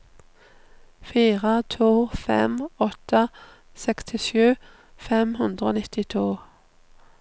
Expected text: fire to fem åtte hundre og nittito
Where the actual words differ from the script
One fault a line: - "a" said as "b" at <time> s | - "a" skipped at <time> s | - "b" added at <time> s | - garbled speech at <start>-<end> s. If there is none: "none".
- "sekstisju fem" added at 3.8 s